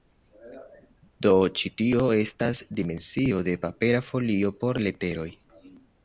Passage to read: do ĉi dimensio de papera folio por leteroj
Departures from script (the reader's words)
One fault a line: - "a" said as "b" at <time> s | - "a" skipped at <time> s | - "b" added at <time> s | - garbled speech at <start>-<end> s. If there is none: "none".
- "tio estas" added at 1.8 s